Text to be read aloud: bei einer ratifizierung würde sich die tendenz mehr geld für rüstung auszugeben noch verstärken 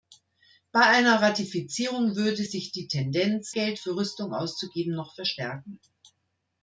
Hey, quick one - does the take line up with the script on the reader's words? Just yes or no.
no